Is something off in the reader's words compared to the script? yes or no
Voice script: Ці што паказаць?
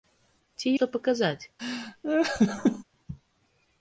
no